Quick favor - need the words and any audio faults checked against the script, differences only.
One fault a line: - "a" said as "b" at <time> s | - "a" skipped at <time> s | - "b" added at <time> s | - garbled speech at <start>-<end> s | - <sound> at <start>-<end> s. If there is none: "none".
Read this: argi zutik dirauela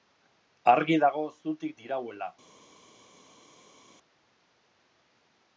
- "dago" added at 1.0 s